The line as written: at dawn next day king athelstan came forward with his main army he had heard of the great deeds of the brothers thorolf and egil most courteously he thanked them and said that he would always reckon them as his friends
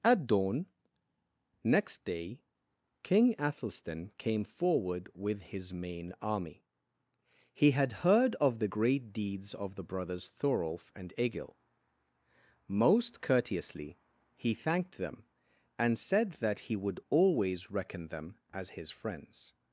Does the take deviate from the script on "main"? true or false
false